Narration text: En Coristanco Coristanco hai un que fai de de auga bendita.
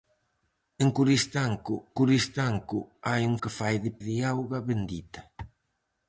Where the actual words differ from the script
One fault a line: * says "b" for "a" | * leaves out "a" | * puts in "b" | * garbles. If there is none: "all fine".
all fine